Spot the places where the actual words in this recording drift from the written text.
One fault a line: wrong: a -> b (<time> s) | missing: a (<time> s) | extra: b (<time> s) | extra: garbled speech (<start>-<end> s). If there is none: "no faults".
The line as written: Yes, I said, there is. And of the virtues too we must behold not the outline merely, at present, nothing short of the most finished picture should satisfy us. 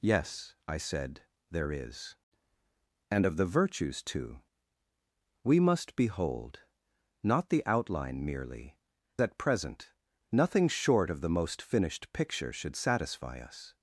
no faults